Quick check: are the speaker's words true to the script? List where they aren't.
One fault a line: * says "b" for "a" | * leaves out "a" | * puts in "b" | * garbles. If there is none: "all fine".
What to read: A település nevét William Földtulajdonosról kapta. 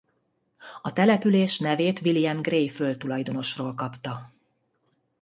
* puts in "Gray"